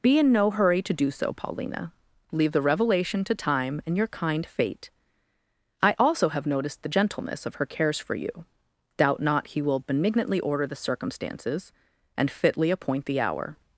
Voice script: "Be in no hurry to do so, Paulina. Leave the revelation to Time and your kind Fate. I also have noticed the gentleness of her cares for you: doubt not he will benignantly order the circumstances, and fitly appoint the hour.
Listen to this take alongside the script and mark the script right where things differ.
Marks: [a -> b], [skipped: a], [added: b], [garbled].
"Be in no hurry to do so, Paulina. Leave the revelation to Time and your kind Fate. I also have noticed the gentleness of her cares for you: doubt not he will benignantly order the circumstances, and fitly appoint the hour.